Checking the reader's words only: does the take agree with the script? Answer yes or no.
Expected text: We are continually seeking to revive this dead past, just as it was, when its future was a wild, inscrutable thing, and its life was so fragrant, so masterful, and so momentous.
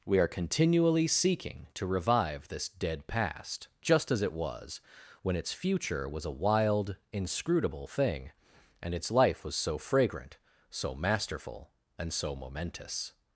yes